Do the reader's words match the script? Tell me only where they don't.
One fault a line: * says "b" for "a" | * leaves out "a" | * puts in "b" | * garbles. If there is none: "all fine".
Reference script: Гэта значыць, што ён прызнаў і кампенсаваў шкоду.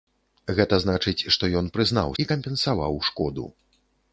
all fine